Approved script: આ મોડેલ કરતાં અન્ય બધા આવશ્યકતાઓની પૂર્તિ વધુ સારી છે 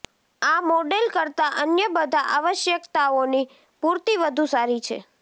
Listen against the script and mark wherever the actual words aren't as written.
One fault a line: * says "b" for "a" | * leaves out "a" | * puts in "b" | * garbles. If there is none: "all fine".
all fine